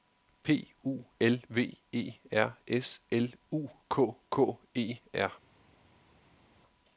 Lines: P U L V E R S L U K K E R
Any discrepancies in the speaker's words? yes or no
no